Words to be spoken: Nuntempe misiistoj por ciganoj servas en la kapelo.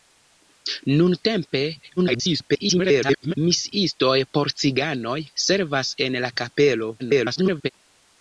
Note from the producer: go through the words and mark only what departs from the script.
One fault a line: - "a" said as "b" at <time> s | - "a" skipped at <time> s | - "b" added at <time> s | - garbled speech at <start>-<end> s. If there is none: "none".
- garbled speech at 2.0-3.3 s
- garbled speech at 7.0-7.7 s